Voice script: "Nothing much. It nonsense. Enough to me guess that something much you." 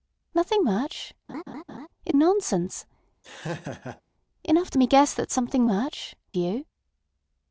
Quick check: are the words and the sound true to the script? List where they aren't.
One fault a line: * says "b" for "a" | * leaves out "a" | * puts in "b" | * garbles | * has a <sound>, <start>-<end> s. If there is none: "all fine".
* has a laugh, 1.3-1.9 s
* has a laugh, 3.2-4.0 s